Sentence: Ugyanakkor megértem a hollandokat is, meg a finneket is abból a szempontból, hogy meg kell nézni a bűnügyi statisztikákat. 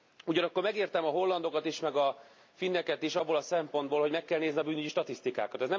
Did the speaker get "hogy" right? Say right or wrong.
right